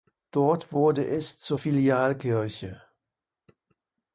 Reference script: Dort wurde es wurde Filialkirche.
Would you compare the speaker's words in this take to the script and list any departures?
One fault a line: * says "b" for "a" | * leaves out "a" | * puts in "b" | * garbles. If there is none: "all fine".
* says "zur" for "wurde"